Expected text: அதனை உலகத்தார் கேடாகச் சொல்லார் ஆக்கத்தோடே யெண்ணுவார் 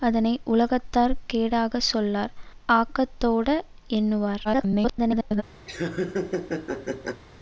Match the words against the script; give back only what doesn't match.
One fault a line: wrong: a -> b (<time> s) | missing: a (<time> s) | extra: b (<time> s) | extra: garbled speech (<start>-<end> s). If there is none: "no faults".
extra: garbled speech (4.4-5.4 s)